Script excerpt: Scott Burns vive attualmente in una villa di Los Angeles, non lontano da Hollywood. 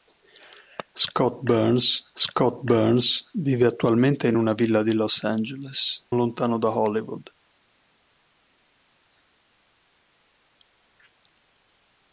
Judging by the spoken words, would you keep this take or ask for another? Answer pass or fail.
fail